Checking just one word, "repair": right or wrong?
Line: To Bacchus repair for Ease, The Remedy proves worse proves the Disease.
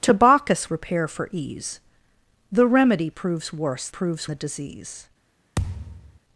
right